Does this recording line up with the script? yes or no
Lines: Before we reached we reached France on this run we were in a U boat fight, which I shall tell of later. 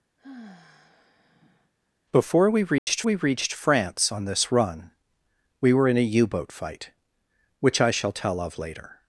yes